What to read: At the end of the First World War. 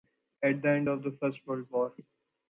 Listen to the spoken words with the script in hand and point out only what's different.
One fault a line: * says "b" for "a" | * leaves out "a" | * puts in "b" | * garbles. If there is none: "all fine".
all fine